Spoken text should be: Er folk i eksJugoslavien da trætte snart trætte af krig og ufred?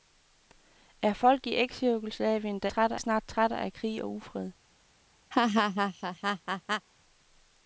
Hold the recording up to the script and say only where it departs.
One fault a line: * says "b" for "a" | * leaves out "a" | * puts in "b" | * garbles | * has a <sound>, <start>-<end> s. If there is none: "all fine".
* has a laugh, 5.3-6.9 s